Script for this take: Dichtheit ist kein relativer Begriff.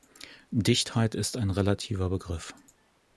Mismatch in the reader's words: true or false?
true